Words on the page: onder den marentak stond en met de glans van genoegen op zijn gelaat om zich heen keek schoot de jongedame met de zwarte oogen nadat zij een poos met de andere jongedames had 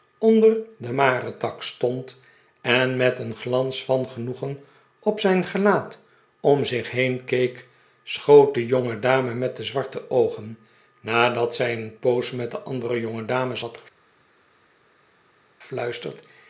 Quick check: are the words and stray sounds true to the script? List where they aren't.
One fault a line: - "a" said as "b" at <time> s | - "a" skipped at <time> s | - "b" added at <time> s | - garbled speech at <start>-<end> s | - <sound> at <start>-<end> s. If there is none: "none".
- "de" said as "een" at 3.2 s